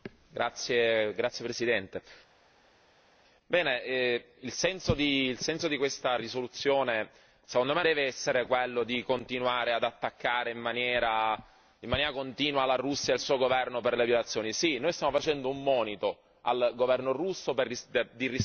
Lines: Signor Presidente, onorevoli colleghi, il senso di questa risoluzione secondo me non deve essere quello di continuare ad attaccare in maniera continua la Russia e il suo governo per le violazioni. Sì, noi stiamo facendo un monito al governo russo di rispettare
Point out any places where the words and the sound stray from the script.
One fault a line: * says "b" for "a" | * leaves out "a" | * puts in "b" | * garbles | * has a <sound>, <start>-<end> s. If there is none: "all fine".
* leaves out "non"